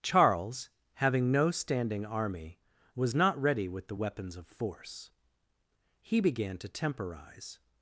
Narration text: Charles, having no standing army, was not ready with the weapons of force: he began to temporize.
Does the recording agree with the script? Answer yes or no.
yes